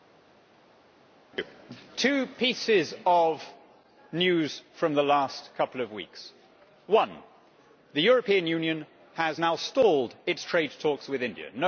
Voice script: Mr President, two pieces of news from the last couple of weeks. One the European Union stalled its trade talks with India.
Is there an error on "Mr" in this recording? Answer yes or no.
no